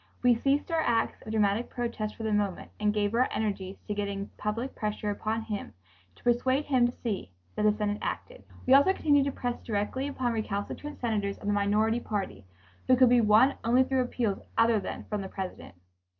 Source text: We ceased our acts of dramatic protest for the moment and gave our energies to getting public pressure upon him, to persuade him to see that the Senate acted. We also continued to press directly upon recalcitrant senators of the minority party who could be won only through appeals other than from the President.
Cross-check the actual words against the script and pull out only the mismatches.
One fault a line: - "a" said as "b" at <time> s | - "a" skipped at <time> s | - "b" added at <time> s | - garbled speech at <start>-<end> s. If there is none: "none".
none